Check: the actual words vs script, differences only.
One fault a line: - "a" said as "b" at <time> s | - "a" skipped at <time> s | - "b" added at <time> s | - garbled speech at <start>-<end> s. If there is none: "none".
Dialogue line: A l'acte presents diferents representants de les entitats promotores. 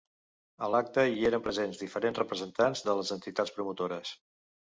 - "hi eren" added at 1.2 s